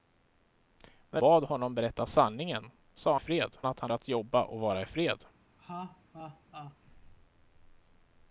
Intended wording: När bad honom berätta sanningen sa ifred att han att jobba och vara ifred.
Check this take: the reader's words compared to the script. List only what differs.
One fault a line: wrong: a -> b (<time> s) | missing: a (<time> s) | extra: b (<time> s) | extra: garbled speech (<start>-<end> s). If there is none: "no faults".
no faults